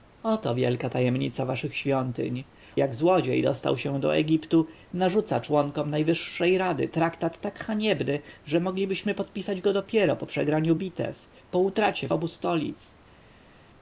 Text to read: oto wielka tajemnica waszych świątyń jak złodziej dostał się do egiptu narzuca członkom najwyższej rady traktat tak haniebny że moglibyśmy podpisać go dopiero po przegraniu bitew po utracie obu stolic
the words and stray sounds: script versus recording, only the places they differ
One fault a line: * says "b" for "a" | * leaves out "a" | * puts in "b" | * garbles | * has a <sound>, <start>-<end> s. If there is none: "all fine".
all fine